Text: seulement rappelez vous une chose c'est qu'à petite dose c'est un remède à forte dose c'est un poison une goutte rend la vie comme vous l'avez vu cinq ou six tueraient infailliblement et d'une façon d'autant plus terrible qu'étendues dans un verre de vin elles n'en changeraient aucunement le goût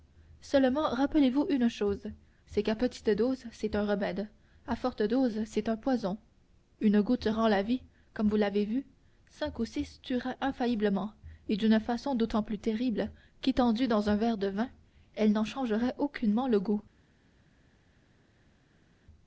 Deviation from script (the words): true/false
false